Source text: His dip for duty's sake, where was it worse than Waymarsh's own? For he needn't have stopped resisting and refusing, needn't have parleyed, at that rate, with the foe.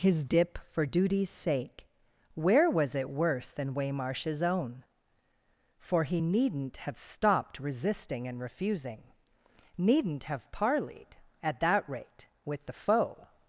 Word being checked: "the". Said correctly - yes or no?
yes